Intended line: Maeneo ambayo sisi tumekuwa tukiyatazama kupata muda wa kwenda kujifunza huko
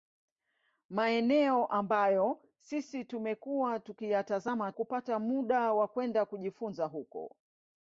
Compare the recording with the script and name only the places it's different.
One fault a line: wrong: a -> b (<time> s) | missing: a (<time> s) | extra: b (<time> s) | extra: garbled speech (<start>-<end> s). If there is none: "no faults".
no faults